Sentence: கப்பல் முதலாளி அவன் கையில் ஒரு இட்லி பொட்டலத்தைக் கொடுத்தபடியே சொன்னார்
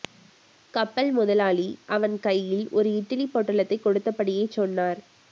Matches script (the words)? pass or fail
pass